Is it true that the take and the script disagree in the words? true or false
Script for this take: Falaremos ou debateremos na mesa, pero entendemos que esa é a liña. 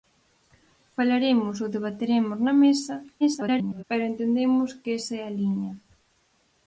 true